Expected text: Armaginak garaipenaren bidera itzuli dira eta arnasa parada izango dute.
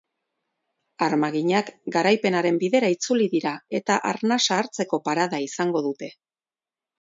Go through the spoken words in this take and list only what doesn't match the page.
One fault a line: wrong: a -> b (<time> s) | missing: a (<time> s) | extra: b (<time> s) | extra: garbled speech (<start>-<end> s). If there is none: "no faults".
extra: hartzeko (4.6 s)